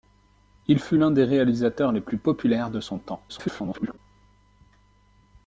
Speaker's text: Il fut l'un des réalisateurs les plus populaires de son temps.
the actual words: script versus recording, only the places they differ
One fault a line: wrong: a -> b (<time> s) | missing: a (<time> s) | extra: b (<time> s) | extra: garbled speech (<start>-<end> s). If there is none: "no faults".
extra: garbled speech (3.3-4.0 s)